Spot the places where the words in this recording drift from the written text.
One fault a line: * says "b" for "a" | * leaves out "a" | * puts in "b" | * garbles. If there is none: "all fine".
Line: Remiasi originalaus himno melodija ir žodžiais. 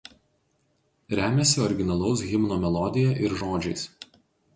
all fine